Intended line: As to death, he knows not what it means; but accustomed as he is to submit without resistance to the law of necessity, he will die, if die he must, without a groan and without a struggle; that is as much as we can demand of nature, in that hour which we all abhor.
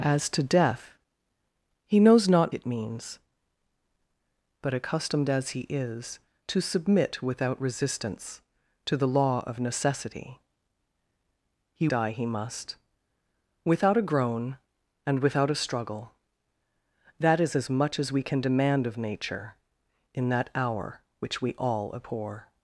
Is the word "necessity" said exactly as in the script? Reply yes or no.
yes